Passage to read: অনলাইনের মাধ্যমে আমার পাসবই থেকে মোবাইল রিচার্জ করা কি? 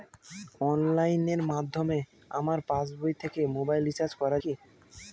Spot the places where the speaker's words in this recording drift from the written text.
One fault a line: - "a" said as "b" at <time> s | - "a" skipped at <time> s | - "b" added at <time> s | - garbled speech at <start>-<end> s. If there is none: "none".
none